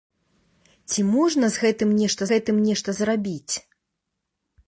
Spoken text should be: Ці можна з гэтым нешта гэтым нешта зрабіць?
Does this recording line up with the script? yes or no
yes